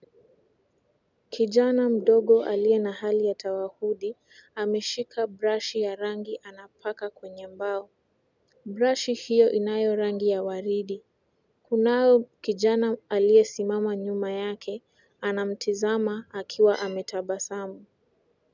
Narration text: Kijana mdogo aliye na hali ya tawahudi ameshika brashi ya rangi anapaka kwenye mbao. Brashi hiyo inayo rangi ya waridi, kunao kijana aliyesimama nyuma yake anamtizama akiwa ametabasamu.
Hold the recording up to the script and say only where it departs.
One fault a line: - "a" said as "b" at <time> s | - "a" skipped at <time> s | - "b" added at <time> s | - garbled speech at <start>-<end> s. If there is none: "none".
none